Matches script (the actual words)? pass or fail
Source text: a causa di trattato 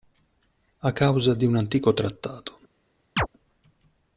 fail